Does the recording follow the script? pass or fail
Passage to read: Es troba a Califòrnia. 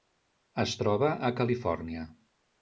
pass